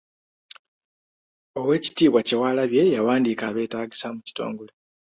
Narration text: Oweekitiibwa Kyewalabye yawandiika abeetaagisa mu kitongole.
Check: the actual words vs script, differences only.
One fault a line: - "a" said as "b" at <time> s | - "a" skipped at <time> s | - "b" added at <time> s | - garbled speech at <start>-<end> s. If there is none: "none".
none